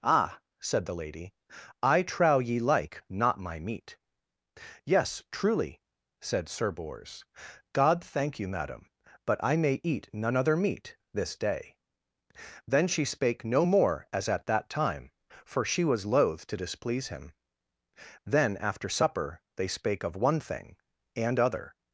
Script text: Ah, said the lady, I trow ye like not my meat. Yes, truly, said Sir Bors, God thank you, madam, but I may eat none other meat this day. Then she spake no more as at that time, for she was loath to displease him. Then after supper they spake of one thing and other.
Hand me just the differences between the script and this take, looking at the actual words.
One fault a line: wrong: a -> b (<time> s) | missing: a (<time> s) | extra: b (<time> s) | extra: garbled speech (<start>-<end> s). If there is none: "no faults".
no faults